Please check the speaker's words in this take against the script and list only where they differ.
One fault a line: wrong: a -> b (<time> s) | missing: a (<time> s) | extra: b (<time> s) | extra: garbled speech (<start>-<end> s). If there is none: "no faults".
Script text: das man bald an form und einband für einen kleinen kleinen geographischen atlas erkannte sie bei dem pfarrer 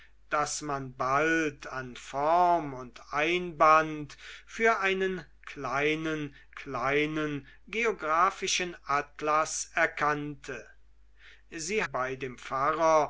no faults